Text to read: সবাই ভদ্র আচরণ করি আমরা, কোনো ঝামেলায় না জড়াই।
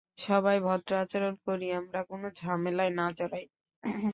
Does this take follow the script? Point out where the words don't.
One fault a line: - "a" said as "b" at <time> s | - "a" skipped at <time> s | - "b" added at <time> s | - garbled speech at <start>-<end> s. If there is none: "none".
none